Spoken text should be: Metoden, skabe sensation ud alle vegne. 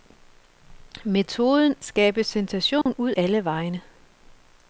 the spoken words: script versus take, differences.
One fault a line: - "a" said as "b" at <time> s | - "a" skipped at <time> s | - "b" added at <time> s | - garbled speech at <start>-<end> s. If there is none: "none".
none